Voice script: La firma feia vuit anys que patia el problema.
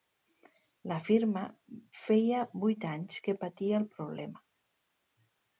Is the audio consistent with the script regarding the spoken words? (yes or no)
yes